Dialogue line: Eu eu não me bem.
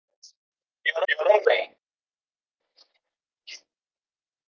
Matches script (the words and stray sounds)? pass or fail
pass